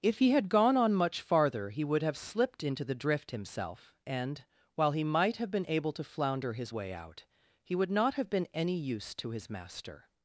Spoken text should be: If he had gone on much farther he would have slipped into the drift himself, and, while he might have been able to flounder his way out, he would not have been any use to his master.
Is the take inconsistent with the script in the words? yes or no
no